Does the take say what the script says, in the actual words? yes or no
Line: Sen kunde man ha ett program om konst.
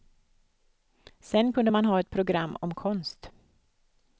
yes